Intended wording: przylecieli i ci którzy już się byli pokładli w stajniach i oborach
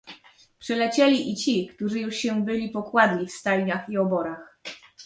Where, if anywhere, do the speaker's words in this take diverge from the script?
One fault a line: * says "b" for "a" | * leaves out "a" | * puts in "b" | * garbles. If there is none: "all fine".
all fine